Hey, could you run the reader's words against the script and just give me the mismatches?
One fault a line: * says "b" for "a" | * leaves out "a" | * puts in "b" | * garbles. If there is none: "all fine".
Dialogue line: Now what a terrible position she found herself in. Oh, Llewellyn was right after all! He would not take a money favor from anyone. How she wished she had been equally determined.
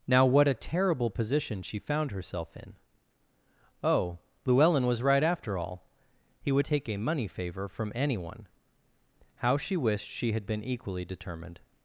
* leaves out "not"